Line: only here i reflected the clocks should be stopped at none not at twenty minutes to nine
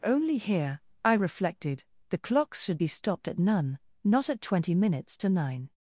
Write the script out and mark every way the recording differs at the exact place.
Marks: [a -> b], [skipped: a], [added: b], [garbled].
only here i reflected the clocks should be stopped at none not at twenty minutes to nine